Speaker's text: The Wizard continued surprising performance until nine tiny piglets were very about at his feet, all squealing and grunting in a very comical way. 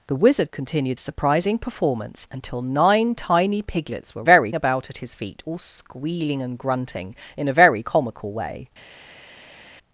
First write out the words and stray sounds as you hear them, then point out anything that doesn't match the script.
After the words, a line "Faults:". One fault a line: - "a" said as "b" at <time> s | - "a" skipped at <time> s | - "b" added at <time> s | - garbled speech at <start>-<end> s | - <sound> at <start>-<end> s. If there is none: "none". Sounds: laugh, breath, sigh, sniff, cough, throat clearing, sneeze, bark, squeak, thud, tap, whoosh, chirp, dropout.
The Wizard continued surprising performance until nine tiny piglets were very about at his feet, all squealing and grunting in a very comical way.
Faults:
none